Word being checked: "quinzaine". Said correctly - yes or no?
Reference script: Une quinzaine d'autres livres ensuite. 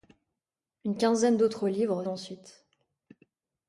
yes